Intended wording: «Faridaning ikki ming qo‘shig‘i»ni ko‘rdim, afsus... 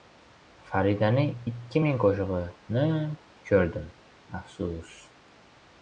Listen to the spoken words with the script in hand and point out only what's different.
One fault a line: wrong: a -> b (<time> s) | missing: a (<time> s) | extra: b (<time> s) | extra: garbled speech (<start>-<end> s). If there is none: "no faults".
no faults